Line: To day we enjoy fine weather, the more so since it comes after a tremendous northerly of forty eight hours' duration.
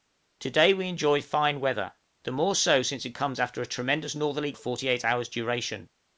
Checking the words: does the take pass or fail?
pass